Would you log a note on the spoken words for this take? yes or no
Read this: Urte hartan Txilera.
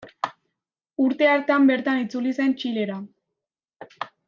yes